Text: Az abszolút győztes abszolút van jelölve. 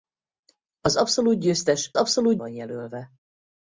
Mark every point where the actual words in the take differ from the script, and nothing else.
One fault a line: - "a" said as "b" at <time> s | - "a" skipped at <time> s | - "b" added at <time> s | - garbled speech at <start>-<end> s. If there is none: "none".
none